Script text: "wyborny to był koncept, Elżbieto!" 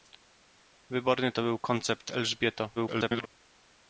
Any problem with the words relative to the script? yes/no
yes